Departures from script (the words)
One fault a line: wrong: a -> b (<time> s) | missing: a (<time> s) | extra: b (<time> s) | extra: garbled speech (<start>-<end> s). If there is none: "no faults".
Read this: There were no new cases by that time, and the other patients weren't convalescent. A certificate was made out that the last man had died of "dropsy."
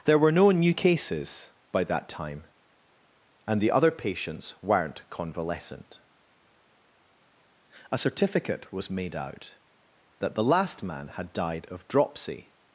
no faults